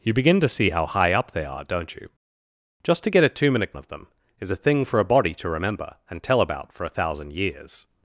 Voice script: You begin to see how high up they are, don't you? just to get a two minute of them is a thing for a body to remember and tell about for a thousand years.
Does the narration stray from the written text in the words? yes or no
no